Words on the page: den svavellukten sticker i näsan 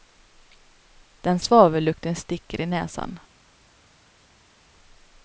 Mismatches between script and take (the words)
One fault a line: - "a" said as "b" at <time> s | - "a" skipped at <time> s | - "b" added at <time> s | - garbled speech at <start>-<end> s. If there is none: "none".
none